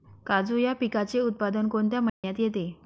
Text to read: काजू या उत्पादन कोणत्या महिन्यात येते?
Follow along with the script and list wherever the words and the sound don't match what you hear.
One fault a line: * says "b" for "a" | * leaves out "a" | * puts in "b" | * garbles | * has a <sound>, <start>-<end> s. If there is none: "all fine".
* puts in "पिकाचे"
* has a dropout, 2.1-2.2 s